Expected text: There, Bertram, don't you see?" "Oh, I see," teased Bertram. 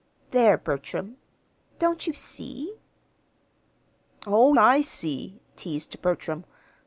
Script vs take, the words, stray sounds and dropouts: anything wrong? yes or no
no